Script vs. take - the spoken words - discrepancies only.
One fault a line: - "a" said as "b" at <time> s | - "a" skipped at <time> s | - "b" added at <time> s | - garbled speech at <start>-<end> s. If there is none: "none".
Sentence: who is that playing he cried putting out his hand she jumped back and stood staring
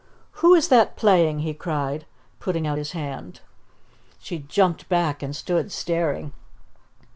none